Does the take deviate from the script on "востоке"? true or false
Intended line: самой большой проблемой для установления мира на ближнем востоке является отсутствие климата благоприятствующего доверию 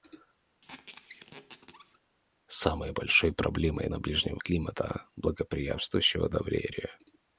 true